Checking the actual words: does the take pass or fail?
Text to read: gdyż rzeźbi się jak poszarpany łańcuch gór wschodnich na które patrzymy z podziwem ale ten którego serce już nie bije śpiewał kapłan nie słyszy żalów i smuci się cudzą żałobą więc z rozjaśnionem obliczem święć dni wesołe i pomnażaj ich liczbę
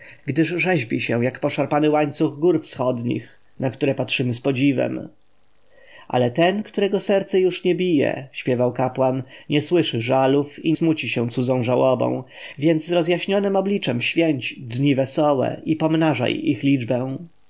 pass